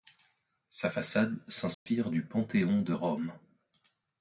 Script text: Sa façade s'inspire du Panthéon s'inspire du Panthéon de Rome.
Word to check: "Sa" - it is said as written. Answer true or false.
true